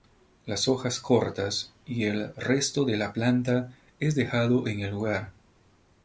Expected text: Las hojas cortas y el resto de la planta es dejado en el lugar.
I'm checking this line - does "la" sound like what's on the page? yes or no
yes